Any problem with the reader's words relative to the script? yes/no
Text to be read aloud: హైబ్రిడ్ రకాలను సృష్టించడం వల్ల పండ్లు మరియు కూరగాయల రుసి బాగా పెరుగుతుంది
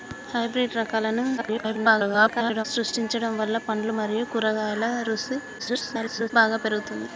yes